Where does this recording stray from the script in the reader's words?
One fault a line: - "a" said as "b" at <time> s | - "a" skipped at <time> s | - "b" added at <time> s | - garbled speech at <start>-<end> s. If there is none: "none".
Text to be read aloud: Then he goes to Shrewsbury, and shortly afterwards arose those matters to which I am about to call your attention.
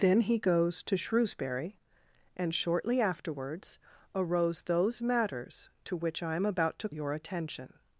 - "call" skipped at 6.9 s